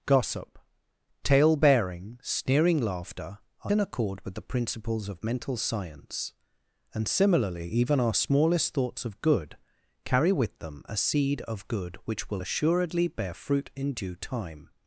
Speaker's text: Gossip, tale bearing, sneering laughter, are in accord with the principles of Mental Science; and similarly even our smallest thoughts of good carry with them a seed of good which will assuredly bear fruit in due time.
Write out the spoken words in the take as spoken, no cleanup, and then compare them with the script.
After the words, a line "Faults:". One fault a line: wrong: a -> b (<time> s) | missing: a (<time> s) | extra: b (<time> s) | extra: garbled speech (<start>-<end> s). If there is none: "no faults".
Gossip, tale bearing, sneering laughter, are in accord with the principles of Mental Science; and similarly even our smallest thoughts of good carry with them a seed of good which will assuredly bear fruit in due time.
Faults:
no faults